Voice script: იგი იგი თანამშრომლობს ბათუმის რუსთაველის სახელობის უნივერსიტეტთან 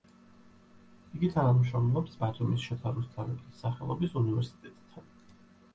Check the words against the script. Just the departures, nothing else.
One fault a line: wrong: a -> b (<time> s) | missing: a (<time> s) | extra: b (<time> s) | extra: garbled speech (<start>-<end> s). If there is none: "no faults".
missing: იგი (1.3 s)
extra: შოთა (2.7 s)